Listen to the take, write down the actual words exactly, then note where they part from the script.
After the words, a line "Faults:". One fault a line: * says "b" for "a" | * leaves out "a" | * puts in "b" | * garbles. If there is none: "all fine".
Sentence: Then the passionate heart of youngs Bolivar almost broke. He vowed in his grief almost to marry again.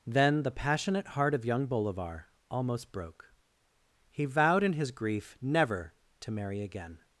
Then the passionate heart of young Bolivar almost broke. He vowed in his grief never to marry again.
Faults:
* says "young" for "youngs"
* says "never" for "almost"